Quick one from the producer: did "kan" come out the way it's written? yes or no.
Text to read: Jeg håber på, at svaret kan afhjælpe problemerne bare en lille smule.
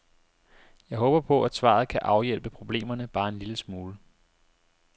yes